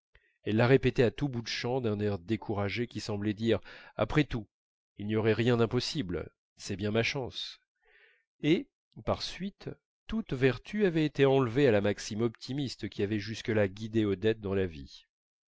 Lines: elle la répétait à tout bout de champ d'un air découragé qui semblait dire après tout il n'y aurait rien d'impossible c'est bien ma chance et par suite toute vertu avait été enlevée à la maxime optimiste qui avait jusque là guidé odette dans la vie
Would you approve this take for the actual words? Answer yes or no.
yes